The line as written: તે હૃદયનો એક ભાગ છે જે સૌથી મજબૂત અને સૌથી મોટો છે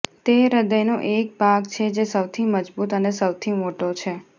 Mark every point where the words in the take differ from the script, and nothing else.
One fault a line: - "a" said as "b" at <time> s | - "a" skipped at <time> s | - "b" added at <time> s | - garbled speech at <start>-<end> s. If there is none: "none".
none